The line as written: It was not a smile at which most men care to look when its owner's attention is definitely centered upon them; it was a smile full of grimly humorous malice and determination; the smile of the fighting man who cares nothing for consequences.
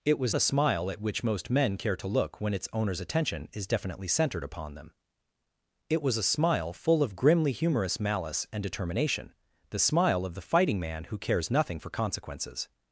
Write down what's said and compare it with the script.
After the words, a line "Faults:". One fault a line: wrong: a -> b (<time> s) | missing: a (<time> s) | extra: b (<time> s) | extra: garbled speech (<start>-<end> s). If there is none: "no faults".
It was a smile at which most men care to look when its owner's attention is definitely centered upon them; it was a smile full of grimly humorous malice and determination; the smile of the fighting man who cares nothing for consequences.
Faults:
missing: not (0.3 s)